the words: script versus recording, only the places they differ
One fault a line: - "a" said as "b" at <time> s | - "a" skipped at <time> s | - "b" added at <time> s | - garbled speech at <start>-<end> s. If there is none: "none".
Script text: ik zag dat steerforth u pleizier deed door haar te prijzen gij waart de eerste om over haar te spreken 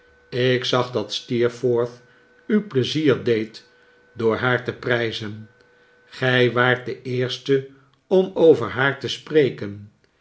none